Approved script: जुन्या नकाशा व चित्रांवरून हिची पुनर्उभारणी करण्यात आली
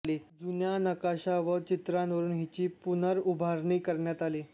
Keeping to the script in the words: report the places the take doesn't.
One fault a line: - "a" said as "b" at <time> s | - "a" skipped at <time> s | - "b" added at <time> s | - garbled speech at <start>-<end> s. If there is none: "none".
none